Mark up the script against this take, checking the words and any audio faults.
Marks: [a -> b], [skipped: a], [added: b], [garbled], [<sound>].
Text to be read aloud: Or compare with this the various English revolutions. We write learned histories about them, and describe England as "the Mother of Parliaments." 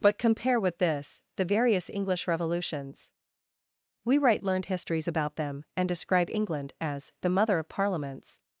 [Or -> But] compare with this the various English revolutions. We write learned histories about them, and describe England as "the Mother of Parliaments."